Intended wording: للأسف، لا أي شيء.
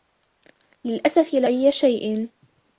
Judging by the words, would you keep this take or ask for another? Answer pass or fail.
pass